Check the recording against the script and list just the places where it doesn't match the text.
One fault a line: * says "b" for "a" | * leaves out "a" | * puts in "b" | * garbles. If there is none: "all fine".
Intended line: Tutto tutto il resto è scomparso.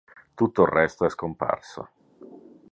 * leaves out "tutto"